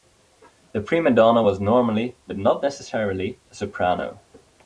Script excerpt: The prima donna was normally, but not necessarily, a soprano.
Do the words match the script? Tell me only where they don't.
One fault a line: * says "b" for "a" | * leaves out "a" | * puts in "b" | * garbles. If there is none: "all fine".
all fine